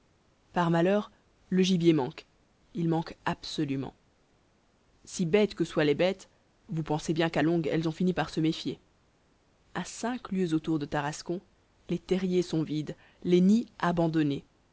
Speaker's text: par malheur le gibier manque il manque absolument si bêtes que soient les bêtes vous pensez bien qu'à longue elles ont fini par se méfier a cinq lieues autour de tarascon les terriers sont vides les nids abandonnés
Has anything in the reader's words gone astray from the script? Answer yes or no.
no